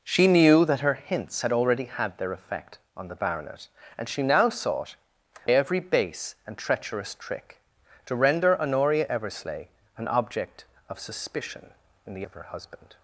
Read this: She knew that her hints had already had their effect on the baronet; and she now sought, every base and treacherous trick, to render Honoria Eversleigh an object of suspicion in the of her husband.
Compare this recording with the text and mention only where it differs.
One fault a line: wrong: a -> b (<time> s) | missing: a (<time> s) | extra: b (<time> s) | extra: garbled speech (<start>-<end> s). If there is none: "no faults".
no faults